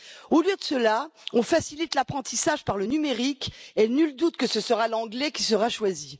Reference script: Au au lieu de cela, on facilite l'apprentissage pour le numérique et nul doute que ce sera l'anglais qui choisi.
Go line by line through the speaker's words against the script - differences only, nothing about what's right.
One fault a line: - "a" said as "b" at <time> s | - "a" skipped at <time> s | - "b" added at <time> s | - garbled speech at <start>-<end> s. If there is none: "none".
- "au" skipped at 0.4 s
- "pour" said as "par" at 2.6 s
- "sera" added at 5.4 s